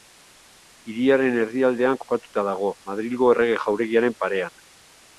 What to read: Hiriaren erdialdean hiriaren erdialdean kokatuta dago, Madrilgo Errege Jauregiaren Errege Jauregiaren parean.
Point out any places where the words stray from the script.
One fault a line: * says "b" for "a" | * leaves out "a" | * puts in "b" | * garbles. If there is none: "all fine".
* leaves out "hiriaren erdialdean"
* leaves out "Errege Jauregiaren"